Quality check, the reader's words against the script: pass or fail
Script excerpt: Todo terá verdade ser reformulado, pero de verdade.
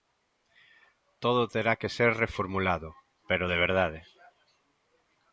fail